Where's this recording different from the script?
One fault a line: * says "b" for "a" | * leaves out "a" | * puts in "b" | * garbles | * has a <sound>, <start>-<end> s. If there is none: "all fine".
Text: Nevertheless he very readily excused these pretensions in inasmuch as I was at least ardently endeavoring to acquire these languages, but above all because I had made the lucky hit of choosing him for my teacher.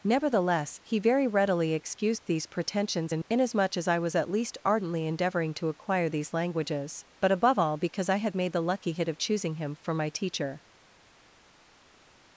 all fine